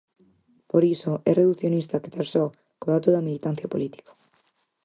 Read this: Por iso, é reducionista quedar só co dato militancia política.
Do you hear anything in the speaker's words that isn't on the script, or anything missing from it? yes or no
yes